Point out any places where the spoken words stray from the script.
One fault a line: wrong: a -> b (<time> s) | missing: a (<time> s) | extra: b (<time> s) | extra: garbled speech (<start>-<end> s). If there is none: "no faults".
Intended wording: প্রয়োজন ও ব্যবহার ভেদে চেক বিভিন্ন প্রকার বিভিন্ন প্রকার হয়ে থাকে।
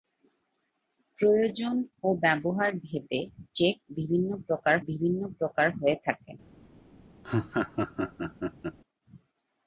no faults